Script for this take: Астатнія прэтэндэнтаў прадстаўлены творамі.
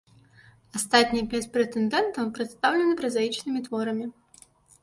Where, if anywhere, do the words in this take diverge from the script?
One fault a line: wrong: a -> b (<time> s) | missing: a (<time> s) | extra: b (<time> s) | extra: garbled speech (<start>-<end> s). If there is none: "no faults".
extra: пяць (1.3 s)
extra: празаічнымі (3.0 s)